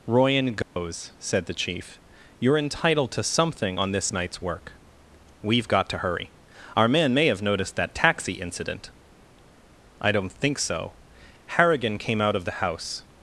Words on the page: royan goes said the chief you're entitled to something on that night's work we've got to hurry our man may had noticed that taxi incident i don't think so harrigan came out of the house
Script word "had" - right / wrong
wrong